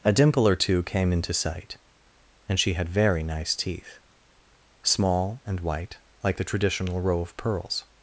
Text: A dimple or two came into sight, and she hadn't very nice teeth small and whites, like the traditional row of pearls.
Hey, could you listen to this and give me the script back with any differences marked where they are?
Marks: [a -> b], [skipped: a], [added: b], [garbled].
A dimple or two came into sight, and she [hadn't -> had] very nice teeth small and [whites, -> white] like the traditional row of pearls.